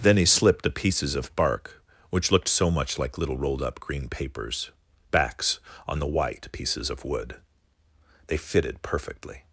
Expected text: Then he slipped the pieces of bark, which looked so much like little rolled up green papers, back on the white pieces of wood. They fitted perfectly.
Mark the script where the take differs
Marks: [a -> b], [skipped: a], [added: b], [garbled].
Then he slipped the pieces of bark, which looked so much like little rolled up green papers, [back -> backs] on the white pieces of wood. They fitted perfectly.